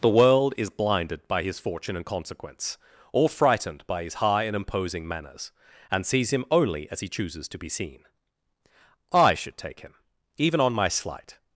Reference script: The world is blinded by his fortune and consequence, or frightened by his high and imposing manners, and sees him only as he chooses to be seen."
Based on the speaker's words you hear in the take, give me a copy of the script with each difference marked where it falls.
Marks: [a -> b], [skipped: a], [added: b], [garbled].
The world is blinded by his fortune and consequence, or frightened by his high and imposing manners, and sees him only as he chooses to be seen." [added: I should take him even on my slight]